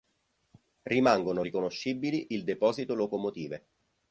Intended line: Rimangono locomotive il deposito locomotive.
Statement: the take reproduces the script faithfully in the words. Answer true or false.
false